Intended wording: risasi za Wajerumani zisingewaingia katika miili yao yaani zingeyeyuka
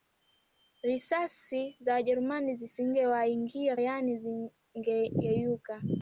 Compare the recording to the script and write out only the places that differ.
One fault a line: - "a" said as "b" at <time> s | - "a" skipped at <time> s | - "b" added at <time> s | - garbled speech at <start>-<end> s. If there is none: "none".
- "katika miili yao" skipped at 3.8 s